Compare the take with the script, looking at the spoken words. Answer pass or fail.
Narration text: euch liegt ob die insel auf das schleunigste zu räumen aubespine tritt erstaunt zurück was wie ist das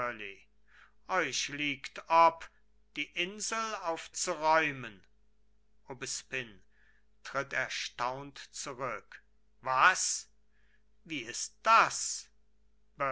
fail